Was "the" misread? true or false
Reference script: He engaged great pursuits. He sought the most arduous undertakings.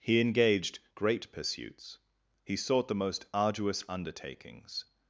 false